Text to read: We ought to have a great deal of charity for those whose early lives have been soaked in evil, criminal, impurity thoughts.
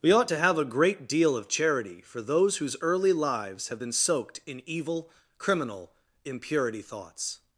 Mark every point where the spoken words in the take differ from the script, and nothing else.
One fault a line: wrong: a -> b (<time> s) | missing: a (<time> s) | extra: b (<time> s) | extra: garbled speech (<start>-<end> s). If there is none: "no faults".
no faults